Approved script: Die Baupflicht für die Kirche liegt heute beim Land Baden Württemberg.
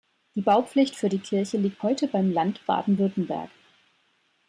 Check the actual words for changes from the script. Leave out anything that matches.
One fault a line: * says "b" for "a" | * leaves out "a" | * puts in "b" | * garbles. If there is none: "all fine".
all fine